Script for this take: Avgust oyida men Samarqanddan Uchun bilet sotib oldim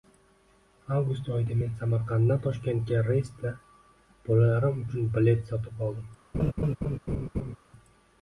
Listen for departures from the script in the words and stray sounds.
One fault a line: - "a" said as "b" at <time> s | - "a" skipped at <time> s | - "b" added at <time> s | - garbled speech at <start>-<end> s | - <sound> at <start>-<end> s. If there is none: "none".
- "Toshkentga reysda bolalarim" added at 2.4 s
- laugh at 6.3-7.6 s